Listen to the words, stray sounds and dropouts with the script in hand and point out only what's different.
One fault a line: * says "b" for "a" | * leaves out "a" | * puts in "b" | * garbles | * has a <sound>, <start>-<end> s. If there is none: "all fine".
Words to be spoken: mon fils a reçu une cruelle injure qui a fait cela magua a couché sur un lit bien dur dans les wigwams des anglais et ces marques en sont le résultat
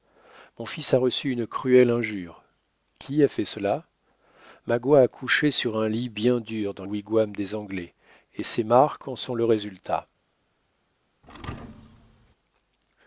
* leaves out "les"
* has a thud, 11.2-12.4 s